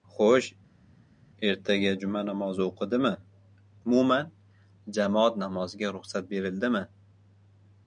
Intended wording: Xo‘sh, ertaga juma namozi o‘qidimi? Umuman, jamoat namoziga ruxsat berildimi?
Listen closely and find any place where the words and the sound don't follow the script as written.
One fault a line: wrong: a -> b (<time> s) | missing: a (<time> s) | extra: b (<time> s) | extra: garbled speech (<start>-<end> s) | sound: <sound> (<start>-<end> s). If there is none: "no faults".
no faults